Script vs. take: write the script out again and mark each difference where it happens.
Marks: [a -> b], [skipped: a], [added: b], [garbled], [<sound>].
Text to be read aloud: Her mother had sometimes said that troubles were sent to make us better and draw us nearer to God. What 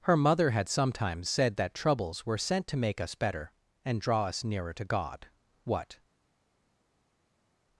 Her mother had sometimes said that troubles were sent to make us better and draw us nearer to God. What